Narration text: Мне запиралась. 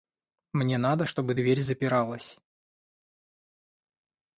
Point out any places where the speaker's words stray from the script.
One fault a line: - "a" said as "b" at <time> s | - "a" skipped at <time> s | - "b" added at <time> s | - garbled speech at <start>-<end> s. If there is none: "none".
- "надо чтобы дверь" added at 0.8 s